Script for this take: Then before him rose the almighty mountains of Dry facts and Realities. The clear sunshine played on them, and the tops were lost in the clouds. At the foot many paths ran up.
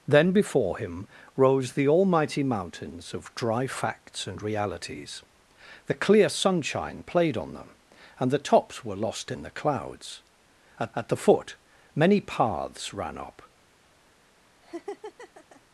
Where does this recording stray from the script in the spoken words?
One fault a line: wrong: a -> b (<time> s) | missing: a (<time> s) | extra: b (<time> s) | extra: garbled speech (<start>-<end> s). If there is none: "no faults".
extra: at (11.0 s)